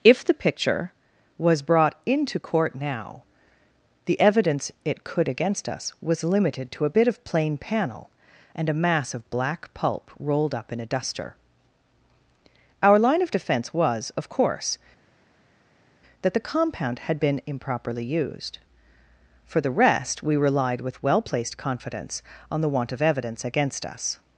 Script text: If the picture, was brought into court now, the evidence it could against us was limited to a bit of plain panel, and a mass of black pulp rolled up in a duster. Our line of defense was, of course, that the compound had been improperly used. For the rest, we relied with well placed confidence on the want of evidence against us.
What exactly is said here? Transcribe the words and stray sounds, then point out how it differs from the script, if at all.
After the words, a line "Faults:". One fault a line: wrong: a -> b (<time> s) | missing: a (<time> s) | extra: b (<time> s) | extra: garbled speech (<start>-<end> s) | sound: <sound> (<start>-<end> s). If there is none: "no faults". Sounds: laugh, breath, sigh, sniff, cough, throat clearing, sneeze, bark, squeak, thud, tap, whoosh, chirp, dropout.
If the picture, was brought into court now, the evidence it could against us was limited to a bit of plain panel, and a mass of black pulp rolled up in a duster. Our line of defense was, of course, that the compound had been improperly used. For the rest, we relied with well placed confidence on the want of evidence against us.
Faults:
no faults